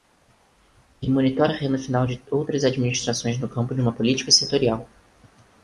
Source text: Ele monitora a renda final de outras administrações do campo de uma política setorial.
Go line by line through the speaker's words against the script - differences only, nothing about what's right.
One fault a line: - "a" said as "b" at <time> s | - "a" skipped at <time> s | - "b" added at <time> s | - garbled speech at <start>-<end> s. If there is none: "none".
- "do" said as "no" at 3.4 s